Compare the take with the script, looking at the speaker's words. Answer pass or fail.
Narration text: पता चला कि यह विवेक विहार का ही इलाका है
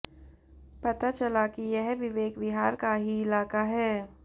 pass